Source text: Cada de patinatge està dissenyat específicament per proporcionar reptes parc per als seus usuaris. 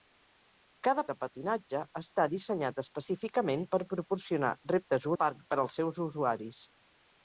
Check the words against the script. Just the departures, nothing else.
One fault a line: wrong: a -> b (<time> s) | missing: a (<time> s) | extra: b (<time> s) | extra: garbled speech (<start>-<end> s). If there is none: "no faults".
no faults